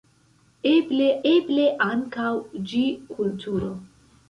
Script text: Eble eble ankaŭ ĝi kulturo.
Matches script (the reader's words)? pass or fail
pass